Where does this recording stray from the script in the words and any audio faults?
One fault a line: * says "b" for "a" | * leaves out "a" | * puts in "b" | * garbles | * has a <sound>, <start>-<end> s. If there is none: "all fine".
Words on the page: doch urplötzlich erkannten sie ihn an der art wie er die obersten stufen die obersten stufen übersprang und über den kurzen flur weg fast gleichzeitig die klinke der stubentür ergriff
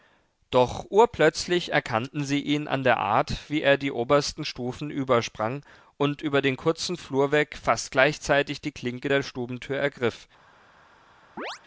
* leaves out "die obersten stufen"
* has a chirp, 11.4-11.6 s